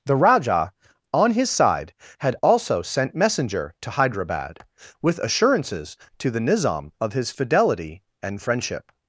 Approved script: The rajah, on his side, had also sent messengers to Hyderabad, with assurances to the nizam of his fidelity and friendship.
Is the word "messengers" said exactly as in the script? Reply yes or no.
no